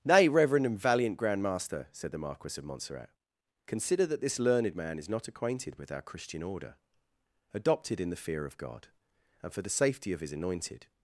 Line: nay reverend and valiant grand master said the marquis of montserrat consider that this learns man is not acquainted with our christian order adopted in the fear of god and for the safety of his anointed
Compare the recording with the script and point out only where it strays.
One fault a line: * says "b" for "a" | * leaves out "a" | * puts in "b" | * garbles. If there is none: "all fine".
* says "learned" for "learns"